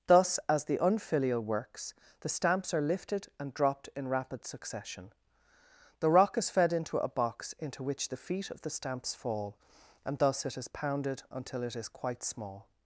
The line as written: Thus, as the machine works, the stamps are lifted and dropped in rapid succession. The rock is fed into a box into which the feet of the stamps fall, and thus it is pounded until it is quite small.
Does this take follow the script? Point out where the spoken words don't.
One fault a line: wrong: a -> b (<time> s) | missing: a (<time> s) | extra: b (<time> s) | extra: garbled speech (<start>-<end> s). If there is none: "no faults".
wrong: machine -> unfilial (0.8 s)